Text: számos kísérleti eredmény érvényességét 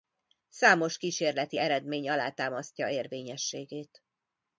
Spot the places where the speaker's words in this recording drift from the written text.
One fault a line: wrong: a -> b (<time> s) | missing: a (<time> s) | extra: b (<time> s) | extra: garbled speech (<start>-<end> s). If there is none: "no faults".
extra: alátámasztja (2.1 s)